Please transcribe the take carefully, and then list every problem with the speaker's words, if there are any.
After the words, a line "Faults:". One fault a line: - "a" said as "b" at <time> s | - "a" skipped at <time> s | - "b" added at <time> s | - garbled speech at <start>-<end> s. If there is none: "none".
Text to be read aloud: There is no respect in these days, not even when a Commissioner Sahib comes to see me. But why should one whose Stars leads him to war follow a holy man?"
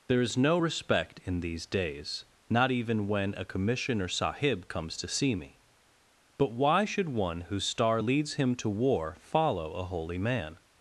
There is no respect in these days, not even when a Commissioner Sahib comes to see me. But why should one whose Star leads him to war follow a holy man?"
Faults:
- "Stars" said as "Star" at 7.7 s